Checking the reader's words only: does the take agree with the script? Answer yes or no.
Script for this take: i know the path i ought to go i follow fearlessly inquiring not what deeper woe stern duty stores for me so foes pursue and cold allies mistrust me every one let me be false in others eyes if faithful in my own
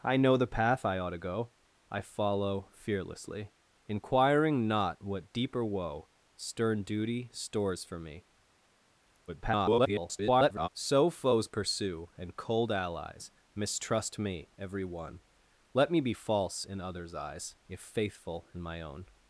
no